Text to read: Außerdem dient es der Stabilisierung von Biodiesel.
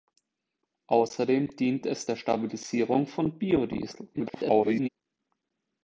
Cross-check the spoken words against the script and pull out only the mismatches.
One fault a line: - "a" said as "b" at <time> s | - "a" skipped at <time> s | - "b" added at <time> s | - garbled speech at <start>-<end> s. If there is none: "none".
- garbled speech at 4.1-4.9 s